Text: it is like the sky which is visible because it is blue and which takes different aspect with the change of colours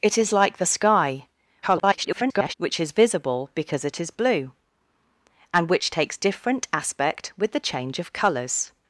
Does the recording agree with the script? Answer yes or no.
no